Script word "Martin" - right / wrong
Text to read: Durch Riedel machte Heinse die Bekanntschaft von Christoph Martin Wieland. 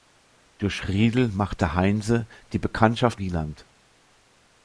wrong